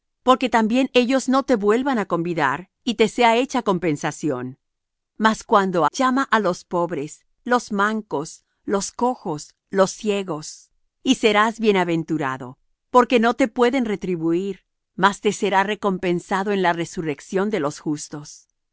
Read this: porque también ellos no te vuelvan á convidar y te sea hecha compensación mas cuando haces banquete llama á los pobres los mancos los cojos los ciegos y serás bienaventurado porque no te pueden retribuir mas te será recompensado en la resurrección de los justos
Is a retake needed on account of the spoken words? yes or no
yes